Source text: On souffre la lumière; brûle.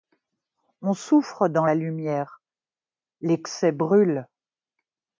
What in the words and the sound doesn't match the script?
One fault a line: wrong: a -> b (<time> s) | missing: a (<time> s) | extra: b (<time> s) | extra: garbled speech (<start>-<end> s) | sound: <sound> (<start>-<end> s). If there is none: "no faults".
extra: dans (1.5 s)
extra: l'excès (3.2 s)